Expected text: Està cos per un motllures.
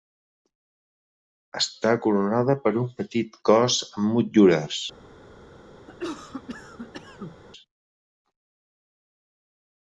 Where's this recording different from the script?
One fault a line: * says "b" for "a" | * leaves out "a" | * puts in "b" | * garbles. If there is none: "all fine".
* says "coronada" for "cos"
* puts in "petit cos amb"